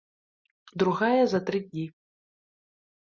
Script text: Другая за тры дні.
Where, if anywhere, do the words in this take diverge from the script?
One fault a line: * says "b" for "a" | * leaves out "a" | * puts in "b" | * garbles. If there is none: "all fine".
all fine